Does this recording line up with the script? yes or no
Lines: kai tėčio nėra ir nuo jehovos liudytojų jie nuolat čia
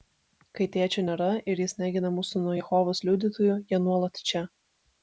no